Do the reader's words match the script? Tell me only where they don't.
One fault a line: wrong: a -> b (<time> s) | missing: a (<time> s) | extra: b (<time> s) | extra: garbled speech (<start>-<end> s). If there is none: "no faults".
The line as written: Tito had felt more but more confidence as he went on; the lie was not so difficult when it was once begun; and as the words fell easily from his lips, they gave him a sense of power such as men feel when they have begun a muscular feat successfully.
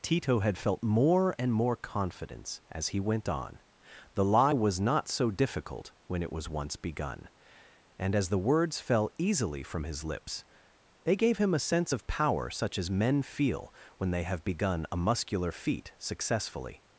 wrong: but -> and (1.4 s)